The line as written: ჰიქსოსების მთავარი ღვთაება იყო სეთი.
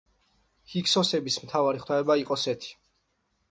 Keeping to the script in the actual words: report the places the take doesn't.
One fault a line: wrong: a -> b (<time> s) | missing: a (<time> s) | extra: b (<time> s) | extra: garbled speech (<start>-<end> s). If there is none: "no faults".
no faults